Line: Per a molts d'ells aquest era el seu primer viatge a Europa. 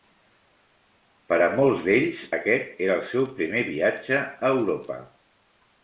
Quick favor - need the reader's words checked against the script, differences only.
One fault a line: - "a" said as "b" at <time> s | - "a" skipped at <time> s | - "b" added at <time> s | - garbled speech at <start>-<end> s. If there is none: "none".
none